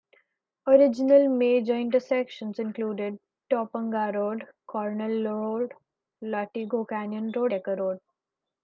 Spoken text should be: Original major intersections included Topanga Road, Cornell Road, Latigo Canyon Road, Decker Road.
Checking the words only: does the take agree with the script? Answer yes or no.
yes